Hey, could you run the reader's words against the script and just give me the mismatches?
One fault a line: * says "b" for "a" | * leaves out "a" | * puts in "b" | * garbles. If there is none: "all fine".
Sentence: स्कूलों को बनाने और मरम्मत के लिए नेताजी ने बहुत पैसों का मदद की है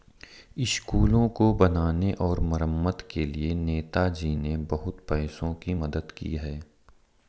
* says "की" for "का"